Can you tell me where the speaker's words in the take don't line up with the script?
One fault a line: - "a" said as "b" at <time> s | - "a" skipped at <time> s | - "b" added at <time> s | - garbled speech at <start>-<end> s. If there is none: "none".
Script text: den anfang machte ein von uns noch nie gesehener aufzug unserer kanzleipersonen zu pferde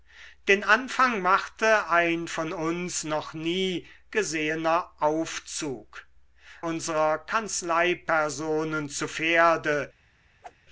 none